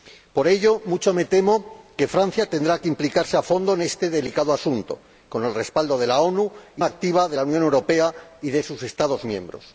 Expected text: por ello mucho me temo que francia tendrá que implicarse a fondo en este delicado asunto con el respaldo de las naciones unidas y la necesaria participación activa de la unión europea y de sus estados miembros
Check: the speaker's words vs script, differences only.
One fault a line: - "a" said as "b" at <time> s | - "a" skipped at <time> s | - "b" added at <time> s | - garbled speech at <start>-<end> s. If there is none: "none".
- "la necesaria participación" skipped at 6.8 s